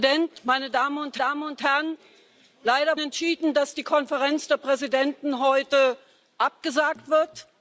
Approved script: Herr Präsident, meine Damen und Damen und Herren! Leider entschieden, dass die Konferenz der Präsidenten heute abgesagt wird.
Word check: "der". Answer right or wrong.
right